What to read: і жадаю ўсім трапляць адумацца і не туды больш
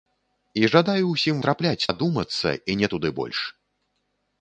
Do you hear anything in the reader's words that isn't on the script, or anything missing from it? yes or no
no